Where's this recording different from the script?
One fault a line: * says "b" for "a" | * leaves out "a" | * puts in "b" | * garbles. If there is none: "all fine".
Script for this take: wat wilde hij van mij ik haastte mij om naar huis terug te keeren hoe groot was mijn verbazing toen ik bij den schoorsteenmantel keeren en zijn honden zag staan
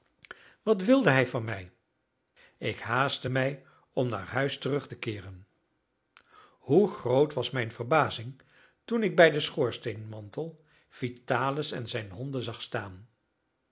* says "vitalis" for "keeren"